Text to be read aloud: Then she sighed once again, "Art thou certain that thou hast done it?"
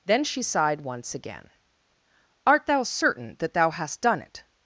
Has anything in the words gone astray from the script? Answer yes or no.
no